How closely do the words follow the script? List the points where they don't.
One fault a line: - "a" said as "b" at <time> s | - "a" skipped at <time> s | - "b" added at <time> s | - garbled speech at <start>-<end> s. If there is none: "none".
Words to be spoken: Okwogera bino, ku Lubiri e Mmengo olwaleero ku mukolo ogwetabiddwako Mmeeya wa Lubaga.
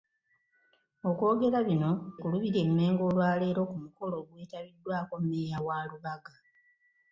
none